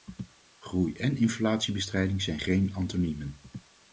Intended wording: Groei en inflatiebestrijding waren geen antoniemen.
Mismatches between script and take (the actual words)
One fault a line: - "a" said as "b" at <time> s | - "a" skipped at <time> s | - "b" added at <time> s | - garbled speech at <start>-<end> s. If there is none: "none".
- "waren" said as "zijn" at 2.2 s